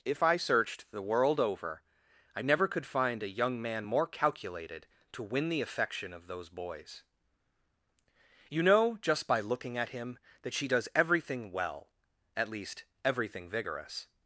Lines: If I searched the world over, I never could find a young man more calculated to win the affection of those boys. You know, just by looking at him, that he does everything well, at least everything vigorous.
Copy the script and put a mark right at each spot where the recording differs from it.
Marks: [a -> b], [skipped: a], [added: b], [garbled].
If I searched the world over, I never could find a young man more calculated to win the affection of those boys. You know, just by looking at him, that [he -> she] does everything well, at least everything vigorous.